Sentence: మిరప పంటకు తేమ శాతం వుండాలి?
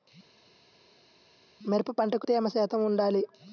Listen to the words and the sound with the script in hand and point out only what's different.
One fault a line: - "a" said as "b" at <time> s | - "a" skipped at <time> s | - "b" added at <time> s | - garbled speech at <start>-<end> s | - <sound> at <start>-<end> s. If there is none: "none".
none